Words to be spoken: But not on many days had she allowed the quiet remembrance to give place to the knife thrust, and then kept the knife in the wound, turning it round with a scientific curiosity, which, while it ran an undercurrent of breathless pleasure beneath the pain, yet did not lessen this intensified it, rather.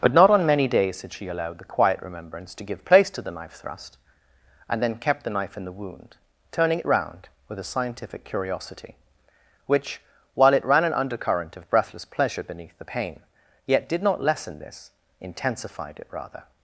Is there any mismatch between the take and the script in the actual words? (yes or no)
no